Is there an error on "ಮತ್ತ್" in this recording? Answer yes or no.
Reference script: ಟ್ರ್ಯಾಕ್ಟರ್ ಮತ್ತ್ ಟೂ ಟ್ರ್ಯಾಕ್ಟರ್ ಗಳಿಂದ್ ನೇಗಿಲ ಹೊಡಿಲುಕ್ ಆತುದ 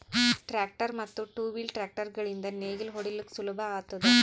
no